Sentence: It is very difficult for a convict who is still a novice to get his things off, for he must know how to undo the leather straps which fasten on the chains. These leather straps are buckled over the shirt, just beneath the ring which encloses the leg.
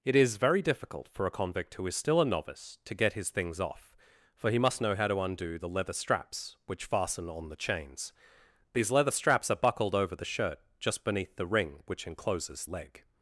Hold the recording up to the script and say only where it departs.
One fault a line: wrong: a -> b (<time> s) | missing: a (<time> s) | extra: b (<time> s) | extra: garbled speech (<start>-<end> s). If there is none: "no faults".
missing: the (12.7 s)